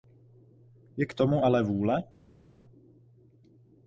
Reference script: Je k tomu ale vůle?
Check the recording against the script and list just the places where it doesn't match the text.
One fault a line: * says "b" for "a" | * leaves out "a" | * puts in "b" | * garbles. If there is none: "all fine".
all fine